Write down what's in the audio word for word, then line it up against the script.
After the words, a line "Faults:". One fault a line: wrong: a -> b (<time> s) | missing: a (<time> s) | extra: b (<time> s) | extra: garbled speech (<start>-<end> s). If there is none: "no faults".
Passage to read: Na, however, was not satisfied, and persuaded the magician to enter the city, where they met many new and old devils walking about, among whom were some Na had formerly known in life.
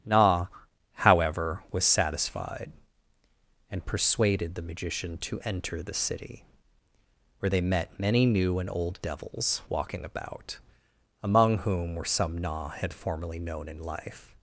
Na, however, was satisfied, and persuaded the magician to enter the city, where they met many new and old devils walking about, among whom were some Na had formerly known in life.
Faults:
missing: not (1.9 s)